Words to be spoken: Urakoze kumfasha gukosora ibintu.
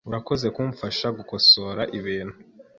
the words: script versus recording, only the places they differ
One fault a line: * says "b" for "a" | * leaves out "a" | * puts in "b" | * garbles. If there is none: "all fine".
all fine